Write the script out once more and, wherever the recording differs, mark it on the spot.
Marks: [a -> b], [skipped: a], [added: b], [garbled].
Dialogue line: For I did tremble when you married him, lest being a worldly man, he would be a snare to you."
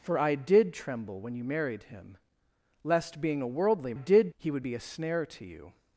For I did tremble when you married him, lest being a worldly [man, -> did] he would be a snare to you."